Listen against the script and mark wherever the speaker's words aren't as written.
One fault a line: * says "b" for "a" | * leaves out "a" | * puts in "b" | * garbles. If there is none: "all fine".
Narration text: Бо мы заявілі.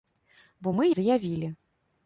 all fine